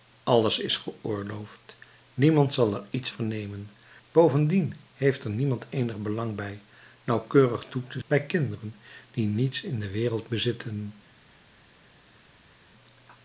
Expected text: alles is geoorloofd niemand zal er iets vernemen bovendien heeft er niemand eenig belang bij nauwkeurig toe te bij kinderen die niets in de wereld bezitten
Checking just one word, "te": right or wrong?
right